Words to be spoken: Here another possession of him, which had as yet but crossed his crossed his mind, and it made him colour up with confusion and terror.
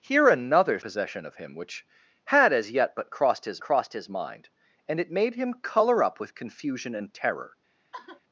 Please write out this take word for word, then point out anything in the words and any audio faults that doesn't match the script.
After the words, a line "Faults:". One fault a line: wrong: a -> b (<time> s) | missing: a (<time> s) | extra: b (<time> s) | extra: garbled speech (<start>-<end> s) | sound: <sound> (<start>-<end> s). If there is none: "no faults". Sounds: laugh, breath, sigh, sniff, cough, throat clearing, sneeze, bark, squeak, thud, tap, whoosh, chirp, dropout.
Here another possession of him, which had as yet but crossed his crossed his mind, and it made him colour up with confusion and terror.
Faults:
sound: sigh (7.9-8.2 s)